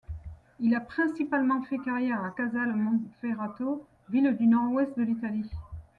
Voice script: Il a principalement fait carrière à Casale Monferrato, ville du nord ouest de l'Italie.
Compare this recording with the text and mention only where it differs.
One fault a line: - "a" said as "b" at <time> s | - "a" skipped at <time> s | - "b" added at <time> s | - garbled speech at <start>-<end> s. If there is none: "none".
none